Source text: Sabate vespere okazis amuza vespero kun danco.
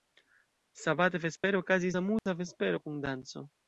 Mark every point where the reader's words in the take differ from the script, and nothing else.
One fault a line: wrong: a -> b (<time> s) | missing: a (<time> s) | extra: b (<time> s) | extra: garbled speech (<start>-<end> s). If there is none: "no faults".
no faults